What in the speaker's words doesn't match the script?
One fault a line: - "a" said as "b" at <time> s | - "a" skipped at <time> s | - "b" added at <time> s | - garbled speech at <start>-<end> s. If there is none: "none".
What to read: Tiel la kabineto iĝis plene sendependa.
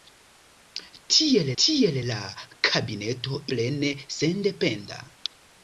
- "tiel" added at 1.6 s
- "iĝis" skipped at 3.4 s